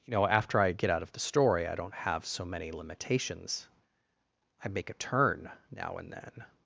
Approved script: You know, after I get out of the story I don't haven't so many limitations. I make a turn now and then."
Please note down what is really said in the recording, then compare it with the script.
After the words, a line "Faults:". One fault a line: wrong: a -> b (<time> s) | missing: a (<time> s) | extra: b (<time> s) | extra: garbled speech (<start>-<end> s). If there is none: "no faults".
You know, after I get out of the story I don't have so many limitations. I make a turn now and then."
Faults:
wrong: haven't -> have (1.9 s)